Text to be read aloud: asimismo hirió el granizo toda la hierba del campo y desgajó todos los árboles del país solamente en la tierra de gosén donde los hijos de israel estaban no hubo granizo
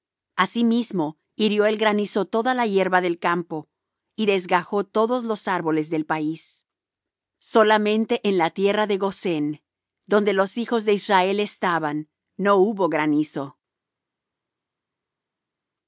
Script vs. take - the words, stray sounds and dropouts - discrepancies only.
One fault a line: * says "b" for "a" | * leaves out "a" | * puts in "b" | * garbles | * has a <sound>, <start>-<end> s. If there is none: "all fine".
all fine